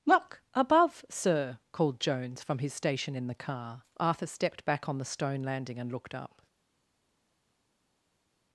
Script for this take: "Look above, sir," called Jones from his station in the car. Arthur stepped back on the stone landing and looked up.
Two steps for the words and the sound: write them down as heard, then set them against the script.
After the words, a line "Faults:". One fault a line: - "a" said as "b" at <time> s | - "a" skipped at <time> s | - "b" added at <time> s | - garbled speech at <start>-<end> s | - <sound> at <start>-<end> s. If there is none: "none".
"Look above, sir," called Jones from his station in the car. Arthur stepped back on the stone landing and looked up.
Faults:
none